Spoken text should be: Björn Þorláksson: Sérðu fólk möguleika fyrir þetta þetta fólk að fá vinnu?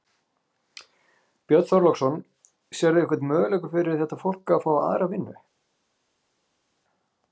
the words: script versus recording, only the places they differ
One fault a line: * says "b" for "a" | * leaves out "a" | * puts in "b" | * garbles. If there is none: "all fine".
* says "einhvern" for "fólk"
* leaves out "þetta"
* puts in "aðra"